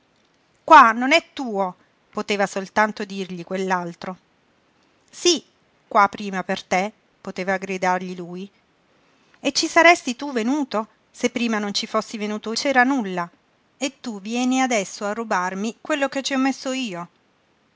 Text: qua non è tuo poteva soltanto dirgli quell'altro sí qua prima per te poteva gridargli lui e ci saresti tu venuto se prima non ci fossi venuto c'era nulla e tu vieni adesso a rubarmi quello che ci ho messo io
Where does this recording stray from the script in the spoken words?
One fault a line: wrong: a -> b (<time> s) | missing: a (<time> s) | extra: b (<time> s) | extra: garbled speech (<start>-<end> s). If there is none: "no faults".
no faults